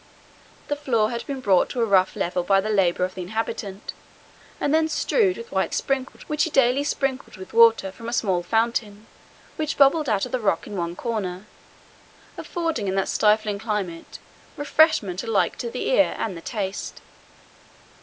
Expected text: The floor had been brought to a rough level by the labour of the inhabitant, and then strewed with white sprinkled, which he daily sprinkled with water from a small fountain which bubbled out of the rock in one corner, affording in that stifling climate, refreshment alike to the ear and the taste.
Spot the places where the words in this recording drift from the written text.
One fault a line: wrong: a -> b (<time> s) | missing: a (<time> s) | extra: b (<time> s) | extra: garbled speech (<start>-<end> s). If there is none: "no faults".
no faults